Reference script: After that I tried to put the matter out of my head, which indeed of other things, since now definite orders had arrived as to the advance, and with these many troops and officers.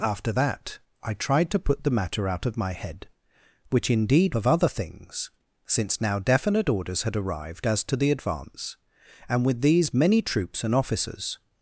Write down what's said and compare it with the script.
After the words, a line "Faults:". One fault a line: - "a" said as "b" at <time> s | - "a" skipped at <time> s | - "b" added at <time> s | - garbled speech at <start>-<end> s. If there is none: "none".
After that I tried to put the matter out of my head, which indeed of other things, since now definite orders had arrived as to the advance, and with these many troops and officers.
Faults:
none